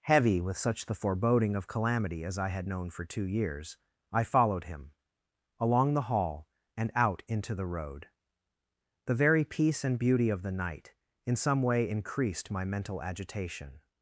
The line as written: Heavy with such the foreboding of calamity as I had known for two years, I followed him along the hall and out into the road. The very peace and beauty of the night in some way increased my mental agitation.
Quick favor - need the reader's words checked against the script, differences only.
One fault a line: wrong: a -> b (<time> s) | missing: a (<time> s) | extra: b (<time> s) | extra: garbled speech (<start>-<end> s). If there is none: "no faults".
no faults